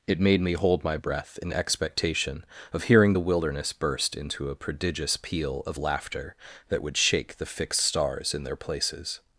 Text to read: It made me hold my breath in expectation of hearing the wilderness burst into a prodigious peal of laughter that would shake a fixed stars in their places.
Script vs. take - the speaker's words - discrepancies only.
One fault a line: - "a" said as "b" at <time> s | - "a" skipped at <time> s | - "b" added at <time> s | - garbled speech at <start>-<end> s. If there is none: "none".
- "a" said as "the" at 7.4 s